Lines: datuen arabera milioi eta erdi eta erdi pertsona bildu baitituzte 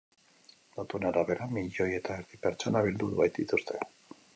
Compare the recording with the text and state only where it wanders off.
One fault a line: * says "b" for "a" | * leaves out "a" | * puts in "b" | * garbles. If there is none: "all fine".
* leaves out "eta erdi"